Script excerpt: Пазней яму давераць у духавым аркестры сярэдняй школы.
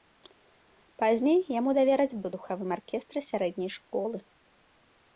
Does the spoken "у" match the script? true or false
true